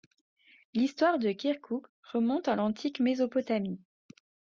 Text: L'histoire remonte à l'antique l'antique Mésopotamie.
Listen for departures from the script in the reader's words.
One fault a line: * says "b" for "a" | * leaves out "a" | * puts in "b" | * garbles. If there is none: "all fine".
* puts in "de Kirkouk"
* leaves out "l'antique"